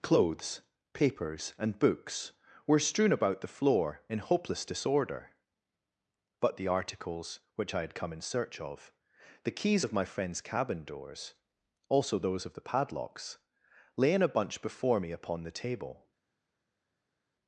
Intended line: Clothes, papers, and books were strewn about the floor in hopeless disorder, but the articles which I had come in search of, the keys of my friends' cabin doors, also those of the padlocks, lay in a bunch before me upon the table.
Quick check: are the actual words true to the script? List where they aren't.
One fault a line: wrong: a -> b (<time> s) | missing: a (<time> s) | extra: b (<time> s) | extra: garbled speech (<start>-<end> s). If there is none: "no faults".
no faults